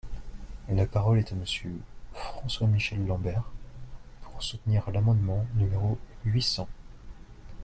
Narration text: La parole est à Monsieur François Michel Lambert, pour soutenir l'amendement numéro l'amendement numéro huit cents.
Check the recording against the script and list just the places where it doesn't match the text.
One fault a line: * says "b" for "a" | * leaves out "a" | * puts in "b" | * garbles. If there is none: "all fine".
* leaves out "l'amendement numéro"